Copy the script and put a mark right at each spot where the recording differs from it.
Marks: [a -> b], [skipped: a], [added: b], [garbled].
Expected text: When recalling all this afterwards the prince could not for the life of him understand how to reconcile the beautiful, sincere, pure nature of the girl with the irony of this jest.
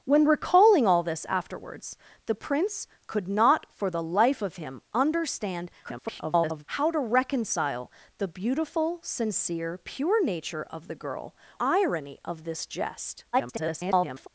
When recalling all this afterwards the prince could not for the life of him understand [garbled] how to reconcile the beautiful, sincere, pure nature of the girl [skipped: with the] irony of this jest. [garbled]